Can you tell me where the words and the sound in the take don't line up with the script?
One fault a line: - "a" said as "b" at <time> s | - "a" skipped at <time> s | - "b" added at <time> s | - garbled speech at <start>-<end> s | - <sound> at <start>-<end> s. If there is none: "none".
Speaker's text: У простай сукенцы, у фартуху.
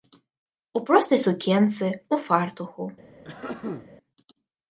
- throat clearing at 3.2-3.9 s